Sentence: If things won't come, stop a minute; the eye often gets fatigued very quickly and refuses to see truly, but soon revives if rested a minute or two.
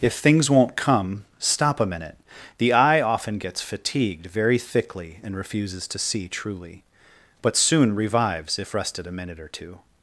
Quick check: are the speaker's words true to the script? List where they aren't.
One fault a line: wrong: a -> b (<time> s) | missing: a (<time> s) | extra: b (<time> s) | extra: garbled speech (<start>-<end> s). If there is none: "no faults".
wrong: quickly -> thickly (4.6 s)